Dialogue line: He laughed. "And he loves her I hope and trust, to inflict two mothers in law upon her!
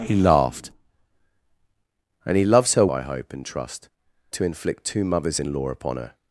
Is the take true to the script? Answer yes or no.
yes